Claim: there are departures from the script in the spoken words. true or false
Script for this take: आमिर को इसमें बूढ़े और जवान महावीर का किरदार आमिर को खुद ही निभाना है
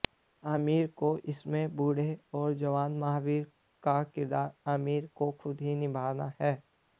false